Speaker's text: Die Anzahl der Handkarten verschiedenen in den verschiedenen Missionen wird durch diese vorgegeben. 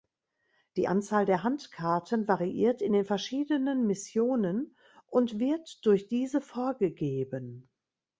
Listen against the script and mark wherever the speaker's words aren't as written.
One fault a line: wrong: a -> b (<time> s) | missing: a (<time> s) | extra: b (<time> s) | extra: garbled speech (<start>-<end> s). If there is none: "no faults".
wrong: verschiedenen -> variiert (2.3 s)
extra: und (5.1 s)